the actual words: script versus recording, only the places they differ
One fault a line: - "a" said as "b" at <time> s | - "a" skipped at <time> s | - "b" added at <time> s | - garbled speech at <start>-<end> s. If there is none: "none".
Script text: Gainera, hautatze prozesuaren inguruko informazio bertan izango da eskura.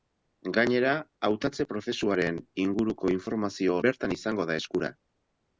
none